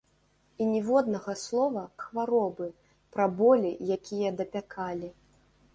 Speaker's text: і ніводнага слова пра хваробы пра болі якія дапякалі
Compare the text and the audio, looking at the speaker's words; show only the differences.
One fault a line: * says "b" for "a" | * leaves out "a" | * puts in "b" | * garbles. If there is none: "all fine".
* leaves out "пра"